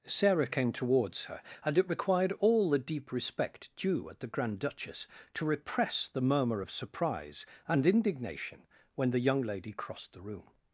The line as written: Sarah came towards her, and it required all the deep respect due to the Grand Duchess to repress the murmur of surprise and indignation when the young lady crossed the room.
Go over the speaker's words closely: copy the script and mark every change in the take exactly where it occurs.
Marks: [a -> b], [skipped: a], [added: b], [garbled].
Sarah came towards her, and it required all the deep respect due [to -> at] the Grand Duchess to repress the murmur of surprise and indignation when the young lady crossed the room.